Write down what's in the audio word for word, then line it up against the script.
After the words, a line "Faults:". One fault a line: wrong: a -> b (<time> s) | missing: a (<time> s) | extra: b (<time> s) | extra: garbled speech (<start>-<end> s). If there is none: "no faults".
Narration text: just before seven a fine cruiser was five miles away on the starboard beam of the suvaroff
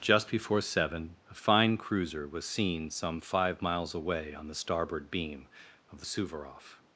just before seven a fine cruiser was seen some five miles away on the starboard beam of the suvaroff
Faults:
extra: seen some (2.4 s)